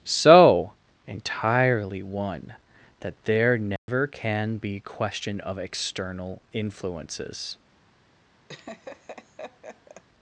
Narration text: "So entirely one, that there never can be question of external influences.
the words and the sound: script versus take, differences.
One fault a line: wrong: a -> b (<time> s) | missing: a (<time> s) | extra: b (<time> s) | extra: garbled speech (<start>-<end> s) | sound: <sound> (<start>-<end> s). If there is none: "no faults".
sound: dropout (3.8-3.9 s)
sound: laugh (8.5-10.0 s)